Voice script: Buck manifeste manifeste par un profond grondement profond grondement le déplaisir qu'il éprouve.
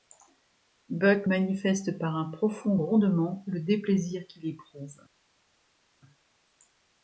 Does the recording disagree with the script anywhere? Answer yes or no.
yes